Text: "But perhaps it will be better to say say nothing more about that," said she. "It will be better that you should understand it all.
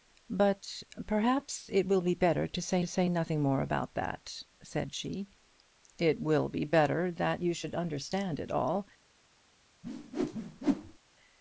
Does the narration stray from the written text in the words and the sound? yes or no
yes